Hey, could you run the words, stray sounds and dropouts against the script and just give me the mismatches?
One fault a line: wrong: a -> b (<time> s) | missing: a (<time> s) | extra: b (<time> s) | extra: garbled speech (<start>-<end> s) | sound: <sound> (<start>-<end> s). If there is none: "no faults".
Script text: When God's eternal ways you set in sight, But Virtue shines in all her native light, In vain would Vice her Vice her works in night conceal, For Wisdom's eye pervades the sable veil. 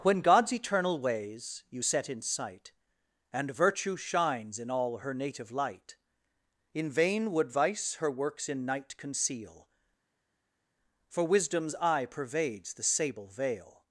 wrong: But -> And (3.3 s)
missing: Vice her (8.1 s)